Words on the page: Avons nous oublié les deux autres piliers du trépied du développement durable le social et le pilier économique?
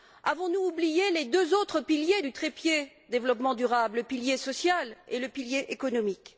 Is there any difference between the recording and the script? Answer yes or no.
yes